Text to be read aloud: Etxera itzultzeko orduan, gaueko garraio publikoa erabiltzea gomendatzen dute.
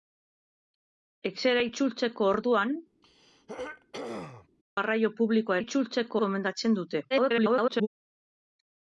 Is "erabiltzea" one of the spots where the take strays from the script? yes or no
yes